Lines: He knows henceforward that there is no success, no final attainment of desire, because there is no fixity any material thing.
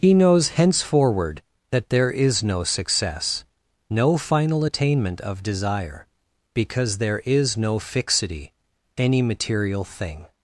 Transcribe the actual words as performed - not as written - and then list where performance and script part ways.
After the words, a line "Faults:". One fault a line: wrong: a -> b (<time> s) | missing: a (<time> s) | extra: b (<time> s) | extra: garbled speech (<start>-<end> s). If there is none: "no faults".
He knows henceforward that there is no success, no final attainment of desire, because there is no fixity any material thing.
Faults:
no faults